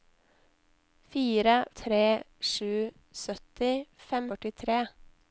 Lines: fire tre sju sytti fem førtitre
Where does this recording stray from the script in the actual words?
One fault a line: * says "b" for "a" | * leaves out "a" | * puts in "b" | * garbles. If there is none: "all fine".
all fine